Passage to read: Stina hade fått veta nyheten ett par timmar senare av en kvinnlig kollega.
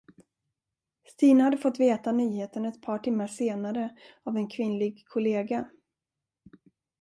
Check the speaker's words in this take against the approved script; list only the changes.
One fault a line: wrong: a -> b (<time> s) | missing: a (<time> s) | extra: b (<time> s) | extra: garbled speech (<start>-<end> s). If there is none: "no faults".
no faults